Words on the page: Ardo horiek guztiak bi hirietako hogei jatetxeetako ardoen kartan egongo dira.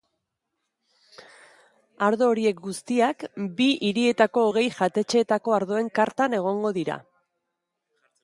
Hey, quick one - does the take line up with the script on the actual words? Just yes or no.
yes